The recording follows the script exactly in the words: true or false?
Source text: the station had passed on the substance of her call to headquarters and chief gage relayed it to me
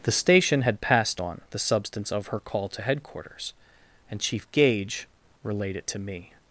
true